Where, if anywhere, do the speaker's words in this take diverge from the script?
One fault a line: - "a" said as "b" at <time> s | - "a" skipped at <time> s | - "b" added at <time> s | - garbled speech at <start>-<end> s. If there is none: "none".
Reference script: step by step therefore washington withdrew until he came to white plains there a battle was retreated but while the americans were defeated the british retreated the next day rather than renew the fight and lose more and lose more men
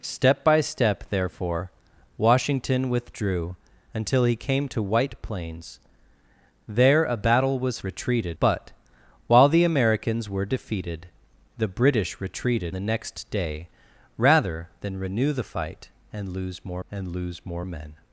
none